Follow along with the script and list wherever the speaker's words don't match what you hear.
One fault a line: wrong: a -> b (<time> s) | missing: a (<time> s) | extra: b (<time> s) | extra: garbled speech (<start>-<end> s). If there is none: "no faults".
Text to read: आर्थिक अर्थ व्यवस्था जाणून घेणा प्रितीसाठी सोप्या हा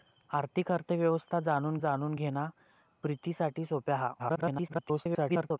extra: जाणून (1.8 s)
extra: garbled speech (4.2-5.6 s)